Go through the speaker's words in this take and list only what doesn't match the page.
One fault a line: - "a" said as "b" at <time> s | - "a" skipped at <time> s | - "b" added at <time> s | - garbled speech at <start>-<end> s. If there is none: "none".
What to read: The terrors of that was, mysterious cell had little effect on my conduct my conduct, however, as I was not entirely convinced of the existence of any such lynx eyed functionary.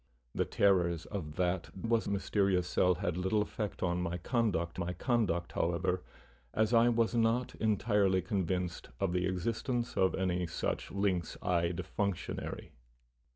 none